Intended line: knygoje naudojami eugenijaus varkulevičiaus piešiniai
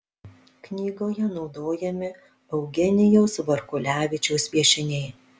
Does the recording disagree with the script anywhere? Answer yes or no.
no